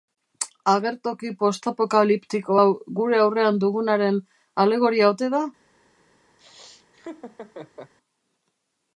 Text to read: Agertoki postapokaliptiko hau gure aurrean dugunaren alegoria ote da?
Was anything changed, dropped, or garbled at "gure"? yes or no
no